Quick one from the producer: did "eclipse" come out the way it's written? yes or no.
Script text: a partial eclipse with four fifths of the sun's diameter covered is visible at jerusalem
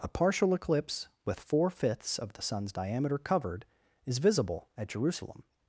yes